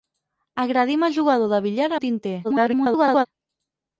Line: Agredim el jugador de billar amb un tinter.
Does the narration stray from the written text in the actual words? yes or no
yes